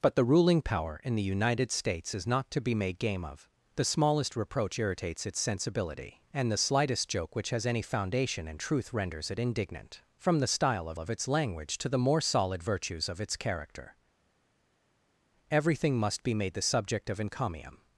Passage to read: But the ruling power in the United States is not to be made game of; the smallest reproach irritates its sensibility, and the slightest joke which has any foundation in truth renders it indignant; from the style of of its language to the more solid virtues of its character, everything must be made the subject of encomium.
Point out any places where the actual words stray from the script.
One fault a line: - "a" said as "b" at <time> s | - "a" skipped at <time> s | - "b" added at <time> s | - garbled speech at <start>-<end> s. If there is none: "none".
none